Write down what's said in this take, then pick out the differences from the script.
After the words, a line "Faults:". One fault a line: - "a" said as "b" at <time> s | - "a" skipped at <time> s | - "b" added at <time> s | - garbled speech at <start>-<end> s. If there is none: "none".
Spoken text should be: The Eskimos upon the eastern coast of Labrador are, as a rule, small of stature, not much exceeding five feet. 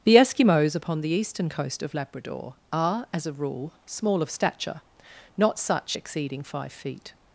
The Eskimos upon the eastern coast of Labrador are, as a rule, small of stature, not such exceeding five feet.
Faults:
- "much" said as "such" at 5.6 s